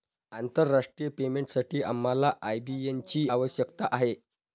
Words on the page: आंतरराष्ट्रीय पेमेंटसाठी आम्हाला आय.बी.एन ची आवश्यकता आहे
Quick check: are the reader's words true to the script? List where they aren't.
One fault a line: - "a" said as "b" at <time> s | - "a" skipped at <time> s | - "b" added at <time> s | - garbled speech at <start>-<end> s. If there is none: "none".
none